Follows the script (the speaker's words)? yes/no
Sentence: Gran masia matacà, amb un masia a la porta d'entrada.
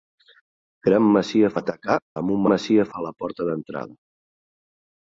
yes